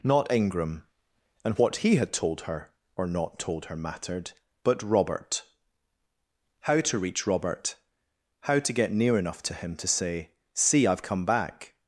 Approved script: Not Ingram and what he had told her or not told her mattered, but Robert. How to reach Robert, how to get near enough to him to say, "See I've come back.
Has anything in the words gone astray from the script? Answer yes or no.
no